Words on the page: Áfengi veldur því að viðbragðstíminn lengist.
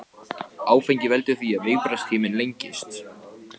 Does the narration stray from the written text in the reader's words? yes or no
no